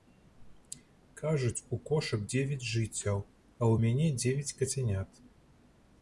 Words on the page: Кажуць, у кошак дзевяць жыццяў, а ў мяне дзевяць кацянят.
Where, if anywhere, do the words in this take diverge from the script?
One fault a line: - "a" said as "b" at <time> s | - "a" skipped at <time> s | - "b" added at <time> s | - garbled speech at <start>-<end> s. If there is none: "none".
none